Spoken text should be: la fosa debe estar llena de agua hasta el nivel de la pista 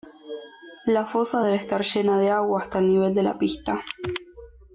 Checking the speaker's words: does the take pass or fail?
pass